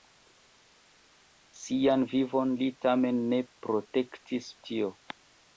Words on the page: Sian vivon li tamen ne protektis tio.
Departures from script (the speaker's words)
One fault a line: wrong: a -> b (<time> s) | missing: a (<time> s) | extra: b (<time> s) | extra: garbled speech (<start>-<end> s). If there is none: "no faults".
no faults